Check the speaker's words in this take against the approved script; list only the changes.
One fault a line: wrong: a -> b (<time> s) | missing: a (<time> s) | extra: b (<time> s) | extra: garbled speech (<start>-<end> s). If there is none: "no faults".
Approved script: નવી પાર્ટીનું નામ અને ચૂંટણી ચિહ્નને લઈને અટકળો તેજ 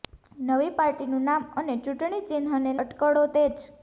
missing: લઈને (2.8 s)